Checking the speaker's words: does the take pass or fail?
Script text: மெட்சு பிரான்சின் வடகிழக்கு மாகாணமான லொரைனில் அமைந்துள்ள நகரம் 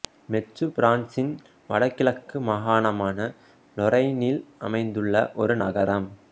fail